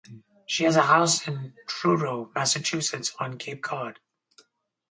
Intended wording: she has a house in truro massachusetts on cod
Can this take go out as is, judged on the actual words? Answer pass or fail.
fail